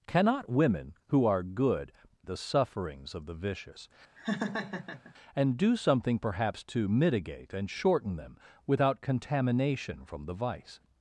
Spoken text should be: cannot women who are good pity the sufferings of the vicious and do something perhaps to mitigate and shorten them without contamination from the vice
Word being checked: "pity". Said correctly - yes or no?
no